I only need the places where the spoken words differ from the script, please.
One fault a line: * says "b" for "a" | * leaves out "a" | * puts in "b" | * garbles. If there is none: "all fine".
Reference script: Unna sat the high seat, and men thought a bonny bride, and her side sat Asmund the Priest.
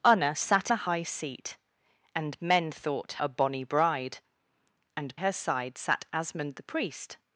all fine